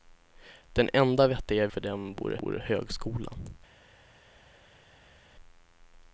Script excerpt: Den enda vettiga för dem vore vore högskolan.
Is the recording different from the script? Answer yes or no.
no